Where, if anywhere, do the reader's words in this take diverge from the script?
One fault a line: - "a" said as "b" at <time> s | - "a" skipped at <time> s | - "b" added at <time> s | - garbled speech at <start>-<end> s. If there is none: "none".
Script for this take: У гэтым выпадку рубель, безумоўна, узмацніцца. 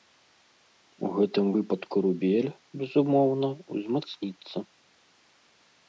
none